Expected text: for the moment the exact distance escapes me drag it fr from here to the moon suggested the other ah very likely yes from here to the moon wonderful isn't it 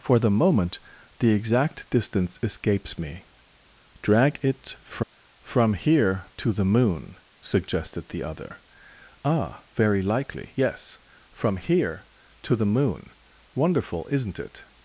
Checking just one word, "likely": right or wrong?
right